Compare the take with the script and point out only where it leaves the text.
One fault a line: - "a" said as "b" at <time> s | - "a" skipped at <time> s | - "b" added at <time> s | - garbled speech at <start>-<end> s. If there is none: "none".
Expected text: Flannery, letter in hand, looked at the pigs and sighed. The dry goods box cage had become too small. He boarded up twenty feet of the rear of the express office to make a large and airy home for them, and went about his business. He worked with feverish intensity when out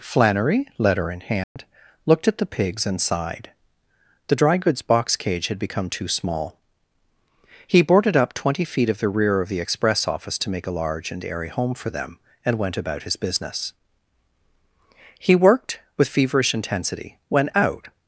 none